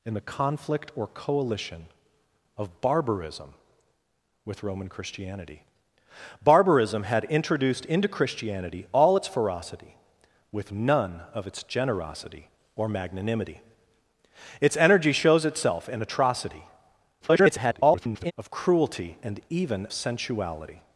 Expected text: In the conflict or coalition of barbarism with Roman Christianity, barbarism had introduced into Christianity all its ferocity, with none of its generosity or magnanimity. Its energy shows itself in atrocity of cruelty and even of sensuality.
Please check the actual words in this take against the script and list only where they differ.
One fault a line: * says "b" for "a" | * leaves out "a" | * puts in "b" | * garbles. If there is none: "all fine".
* garbles
* leaves out "of"